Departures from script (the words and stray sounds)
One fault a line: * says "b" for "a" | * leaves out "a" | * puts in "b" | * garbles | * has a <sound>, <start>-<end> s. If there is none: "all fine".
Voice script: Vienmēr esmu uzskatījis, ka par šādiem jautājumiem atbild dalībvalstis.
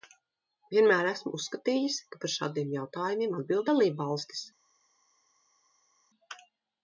all fine